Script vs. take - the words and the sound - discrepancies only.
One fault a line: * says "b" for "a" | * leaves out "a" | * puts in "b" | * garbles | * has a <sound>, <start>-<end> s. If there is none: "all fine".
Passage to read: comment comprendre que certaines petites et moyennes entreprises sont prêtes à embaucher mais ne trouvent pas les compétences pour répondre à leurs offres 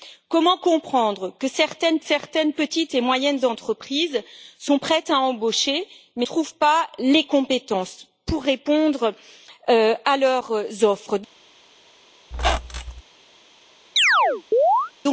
* puts in "certaines"
* leaves out "ne"
* has a squeak, 12.3-13.0 s
* has a chirp, 14.0-14.9 s